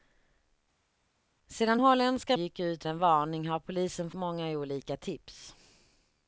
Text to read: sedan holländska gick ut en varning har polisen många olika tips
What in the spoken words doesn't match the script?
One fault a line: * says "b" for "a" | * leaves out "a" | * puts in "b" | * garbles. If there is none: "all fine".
all fine